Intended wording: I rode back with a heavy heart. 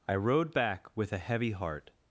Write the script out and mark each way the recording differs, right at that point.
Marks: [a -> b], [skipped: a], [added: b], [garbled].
I rode back with a heavy heart.